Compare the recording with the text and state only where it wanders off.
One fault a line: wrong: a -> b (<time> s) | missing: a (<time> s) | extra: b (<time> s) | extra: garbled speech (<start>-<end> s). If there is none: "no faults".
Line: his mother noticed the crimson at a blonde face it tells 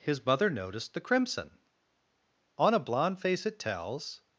wrong: at -> on (2.6 s)